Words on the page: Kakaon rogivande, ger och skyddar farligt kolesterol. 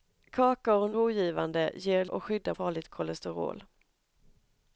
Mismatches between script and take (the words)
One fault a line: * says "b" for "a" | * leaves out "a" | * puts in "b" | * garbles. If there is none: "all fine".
all fine